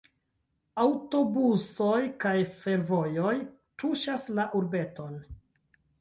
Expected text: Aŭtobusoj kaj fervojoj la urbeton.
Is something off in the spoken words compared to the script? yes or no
yes